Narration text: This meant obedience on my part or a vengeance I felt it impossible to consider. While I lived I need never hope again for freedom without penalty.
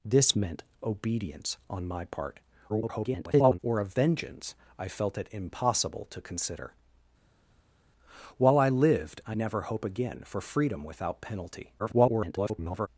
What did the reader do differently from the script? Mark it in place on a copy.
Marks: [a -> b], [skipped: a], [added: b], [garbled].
This meant obedience on my part [garbled] or a vengeance I felt it impossible to consider. While I lived I [skipped: need] never hope again for freedom without penalty. [garbled]